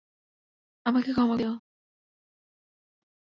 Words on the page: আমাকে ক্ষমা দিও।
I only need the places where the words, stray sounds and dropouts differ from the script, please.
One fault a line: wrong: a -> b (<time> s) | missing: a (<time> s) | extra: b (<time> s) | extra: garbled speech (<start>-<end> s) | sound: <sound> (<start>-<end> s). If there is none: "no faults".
no faults